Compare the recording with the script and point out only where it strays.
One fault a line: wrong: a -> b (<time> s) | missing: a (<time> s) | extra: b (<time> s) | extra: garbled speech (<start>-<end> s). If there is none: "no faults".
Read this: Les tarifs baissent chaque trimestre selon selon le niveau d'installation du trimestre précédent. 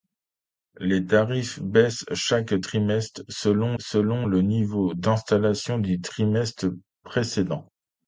no faults